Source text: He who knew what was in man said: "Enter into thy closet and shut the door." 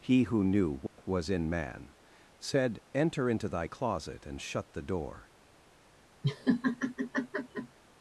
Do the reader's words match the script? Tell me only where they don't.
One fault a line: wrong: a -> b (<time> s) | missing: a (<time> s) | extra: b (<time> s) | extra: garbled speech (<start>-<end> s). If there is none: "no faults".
no faults